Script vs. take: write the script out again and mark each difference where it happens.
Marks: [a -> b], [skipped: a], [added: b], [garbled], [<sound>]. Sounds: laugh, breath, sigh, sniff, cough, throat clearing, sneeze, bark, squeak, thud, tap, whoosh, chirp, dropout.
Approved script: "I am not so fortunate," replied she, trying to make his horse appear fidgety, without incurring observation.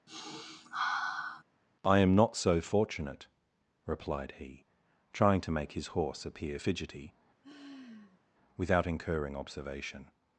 [sniff] "I am not so fortunate," replied [she, -> he] trying to make his horse appear fidgety, [sigh] without incurring observation.